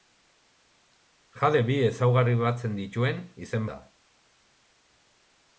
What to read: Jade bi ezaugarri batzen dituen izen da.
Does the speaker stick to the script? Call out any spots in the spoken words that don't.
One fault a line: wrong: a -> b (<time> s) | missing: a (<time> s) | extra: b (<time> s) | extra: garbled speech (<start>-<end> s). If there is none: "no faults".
no faults